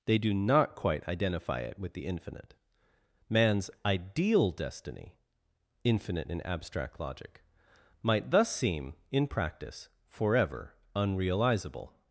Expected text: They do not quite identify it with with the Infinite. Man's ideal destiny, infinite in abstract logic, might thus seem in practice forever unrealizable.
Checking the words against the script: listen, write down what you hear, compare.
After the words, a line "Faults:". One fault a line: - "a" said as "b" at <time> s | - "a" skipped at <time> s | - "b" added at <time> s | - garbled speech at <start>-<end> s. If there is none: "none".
They do not quite identify it with the Infinite. Man's ideal destiny, infinite in abstract logic, might thus seem in practice forever unrealizable.
Faults:
- "with" skipped at 1.9 s